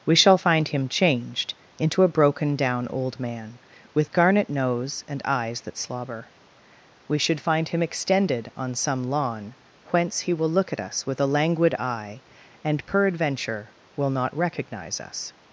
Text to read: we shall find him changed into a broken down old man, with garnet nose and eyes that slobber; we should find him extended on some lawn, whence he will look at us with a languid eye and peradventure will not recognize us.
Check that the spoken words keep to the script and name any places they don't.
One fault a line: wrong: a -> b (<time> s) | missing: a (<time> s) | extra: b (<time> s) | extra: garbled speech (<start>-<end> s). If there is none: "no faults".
no faults